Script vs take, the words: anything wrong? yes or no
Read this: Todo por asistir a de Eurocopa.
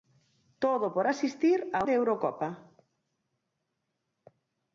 no